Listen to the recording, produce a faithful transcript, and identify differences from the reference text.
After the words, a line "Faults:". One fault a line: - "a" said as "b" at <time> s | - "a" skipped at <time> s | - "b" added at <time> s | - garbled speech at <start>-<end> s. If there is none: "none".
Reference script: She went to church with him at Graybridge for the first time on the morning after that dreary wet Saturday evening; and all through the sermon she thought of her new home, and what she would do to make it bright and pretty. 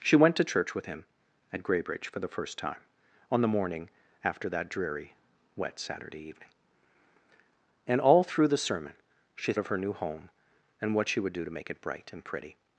She went to church with him at Graybridge for the first time on the morning after that dreary wet Saturday evening; and all through the sermon she of her new home, and what she would do to make it bright and pretty.
Faults:
- "thought" skipped at 9.5 s